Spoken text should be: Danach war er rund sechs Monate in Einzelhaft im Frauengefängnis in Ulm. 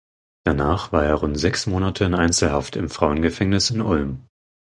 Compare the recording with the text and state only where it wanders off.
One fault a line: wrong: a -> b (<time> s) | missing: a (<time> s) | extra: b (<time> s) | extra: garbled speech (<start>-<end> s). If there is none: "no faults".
no faults